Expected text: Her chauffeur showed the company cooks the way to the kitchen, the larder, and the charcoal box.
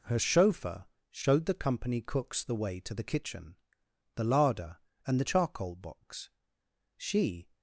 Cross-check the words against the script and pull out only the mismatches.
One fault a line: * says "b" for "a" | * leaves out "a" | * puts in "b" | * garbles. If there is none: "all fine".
* puts in "She"